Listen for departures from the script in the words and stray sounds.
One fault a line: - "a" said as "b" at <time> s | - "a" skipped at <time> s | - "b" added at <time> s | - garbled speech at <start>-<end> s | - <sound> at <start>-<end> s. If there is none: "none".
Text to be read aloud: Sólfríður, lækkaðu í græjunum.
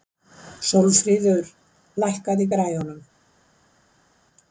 none